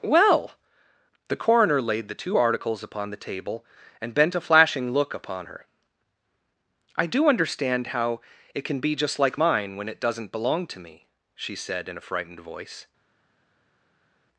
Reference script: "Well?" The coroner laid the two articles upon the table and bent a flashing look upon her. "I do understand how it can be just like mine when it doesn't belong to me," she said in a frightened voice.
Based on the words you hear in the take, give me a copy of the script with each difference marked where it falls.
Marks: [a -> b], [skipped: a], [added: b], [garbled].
"Well?" The coroner laid the two articles upon the table and bent a flashing look upon her. "I do understand how it can be just like mine when it doesn't belong to me," she said in a frightened voice.